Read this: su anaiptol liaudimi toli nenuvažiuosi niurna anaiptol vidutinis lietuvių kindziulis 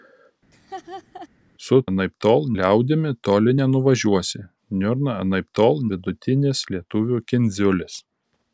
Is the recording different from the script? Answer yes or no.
no